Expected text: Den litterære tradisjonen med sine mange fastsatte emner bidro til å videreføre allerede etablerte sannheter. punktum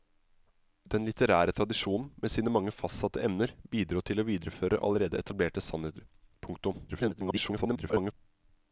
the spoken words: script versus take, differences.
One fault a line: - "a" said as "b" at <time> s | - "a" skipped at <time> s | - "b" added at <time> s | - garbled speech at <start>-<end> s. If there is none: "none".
- garbled speech at 6.9-8.1 s